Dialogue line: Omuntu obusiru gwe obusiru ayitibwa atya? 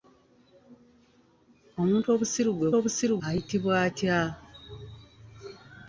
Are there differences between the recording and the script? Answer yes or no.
no